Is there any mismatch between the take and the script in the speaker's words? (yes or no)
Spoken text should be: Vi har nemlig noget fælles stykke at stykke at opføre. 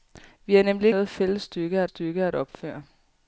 no